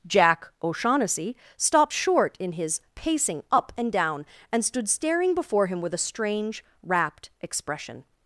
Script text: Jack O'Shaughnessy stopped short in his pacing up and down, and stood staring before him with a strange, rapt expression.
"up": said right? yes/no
yes